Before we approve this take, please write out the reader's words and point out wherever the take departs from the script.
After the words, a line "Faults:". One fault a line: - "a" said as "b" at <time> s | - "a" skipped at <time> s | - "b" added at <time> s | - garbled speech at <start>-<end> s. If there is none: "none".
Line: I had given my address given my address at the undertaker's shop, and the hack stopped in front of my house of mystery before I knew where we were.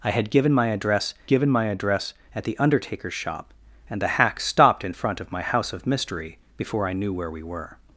I had given my address given my address at the undertaker's shop, and the hack stopped in front of my house of mystery before I knew where we were.
Faults:
none